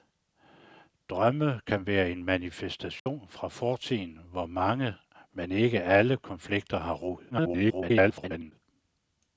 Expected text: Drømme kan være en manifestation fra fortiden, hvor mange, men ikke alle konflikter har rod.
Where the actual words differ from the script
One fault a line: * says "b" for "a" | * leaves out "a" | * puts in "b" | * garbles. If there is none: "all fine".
* garbles